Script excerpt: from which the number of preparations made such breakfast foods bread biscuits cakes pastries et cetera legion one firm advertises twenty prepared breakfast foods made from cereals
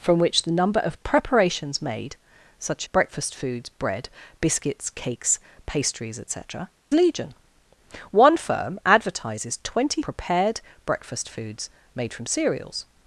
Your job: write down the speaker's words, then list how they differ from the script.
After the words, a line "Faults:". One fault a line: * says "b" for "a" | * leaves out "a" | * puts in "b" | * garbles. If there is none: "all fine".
from which the number of preparations made such breakfast foods bread biscuits cakes pastries et cetera legion one firm advertises twenty prepared breakfast foods made from cereals
Faults:
all fine